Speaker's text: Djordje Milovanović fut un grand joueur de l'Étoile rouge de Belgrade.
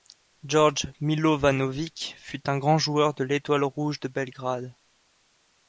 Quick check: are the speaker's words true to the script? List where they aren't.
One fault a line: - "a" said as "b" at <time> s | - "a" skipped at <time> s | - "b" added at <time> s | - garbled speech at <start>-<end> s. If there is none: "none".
none